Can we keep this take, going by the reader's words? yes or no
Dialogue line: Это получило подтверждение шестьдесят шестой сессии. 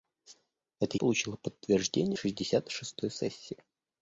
yes